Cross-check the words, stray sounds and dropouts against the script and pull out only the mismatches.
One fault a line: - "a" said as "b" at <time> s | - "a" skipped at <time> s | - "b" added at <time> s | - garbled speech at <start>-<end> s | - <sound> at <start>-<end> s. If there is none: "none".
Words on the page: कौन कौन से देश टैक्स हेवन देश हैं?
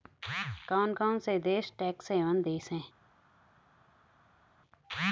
none